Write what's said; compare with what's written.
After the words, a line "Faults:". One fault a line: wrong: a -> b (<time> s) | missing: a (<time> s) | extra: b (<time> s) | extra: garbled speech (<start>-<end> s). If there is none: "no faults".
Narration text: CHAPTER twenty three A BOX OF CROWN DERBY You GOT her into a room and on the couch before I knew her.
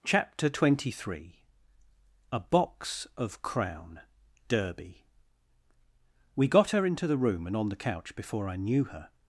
CHAPTER twenty three A BOX OF CROWN DERBY WE GOT her into the room and on the couch before I knew her.
Faults:
wrong: You -> WE (6.3 s)
wrong: a -> the (7.1 s)